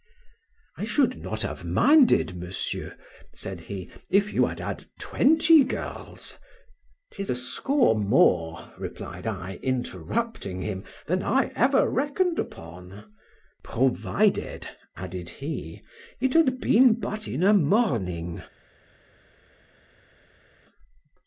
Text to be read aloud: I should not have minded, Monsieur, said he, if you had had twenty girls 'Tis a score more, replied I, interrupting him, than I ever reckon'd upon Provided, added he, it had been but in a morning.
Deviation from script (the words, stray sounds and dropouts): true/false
false